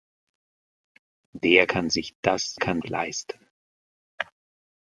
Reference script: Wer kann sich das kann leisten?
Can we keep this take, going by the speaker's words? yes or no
yes